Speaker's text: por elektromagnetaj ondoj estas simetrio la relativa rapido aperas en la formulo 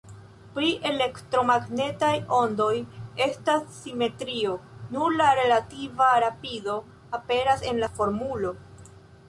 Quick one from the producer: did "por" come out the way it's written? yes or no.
no